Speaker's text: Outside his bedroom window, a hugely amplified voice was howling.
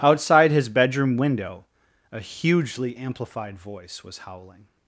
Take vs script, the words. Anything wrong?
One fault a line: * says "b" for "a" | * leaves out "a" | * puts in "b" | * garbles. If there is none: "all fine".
all fine